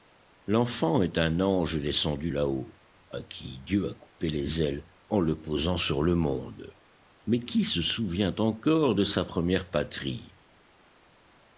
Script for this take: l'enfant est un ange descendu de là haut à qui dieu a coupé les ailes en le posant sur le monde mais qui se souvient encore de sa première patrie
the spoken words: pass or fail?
fail